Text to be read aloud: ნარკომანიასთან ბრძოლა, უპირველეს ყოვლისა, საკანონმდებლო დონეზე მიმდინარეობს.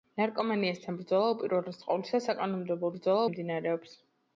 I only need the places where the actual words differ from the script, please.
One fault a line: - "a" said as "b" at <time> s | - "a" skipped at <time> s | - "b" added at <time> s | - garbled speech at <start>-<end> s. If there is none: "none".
- "დონეზე" said as "ბრძოლა" at 3.0 s